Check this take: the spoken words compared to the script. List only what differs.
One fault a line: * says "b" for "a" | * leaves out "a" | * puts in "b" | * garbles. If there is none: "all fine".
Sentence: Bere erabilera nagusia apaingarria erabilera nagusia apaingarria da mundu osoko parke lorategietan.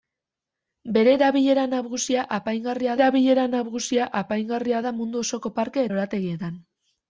all fine